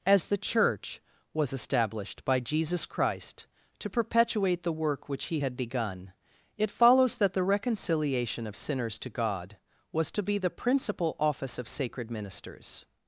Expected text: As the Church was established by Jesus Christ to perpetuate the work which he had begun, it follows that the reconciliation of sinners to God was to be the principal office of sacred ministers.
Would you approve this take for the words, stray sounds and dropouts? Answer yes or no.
yes